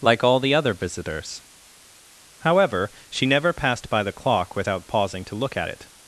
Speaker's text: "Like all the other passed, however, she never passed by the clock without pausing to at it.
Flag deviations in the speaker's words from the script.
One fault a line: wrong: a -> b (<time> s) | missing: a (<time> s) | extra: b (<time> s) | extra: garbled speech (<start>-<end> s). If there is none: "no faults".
wrong: passed -> visitors (0.7 s)
extra: look (5.3 s)